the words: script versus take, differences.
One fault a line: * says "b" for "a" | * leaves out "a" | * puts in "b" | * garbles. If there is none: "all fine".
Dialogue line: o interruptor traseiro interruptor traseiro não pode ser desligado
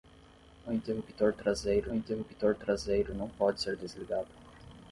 all fine